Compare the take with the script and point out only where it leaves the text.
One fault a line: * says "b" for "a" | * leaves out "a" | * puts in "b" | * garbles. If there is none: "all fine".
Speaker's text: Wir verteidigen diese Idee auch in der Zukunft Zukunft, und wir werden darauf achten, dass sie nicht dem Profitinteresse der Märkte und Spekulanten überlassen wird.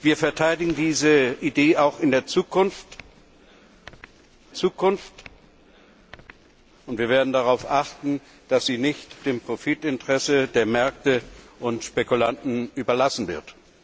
all fine